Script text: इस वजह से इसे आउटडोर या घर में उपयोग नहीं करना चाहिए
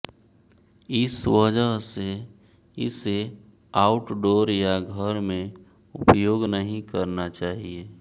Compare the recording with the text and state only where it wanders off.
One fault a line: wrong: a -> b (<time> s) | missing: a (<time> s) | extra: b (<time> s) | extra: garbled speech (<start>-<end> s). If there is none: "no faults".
no faults